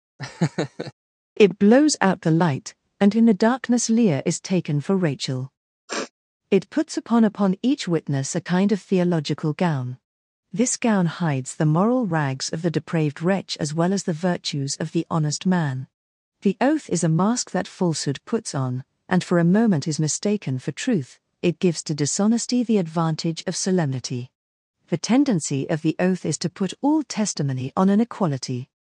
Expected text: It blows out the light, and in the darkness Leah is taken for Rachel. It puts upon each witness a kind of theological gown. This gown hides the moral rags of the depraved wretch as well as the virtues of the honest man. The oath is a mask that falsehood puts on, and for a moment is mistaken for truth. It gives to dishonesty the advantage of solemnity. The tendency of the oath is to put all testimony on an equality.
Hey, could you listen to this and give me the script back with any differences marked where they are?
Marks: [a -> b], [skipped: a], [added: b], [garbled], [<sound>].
[laugh] It blows out the light, and in the darkness Leah is taken for Rachel. [sniff] It puts upon [added: upon] each witness a kind of theological gown. This gown hides the moral rags of the depraved wretch as well as the virtues of the honest man. The oath is a mask that falsehood puts on, and for a moment is mistaken for truth. It gives to dishonesty the advantage of solemnity. The tendency of the oath is to put all testimony on an equality.